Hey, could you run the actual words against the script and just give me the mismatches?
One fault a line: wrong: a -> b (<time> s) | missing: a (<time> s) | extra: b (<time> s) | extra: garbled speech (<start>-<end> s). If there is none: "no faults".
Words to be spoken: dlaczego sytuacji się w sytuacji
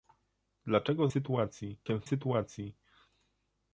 no faults